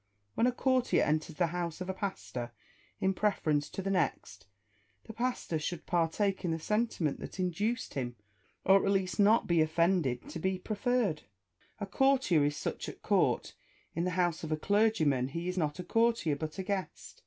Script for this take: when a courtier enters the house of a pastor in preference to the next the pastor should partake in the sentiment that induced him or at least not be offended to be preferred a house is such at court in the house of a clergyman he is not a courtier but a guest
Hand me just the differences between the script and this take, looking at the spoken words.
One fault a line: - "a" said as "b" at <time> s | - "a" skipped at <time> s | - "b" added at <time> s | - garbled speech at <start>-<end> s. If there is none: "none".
- "house" said as "courtier" at 11.9 s